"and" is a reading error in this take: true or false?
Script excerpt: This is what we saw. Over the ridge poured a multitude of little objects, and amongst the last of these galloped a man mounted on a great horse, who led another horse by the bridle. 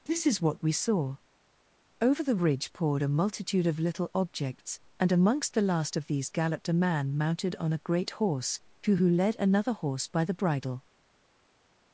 false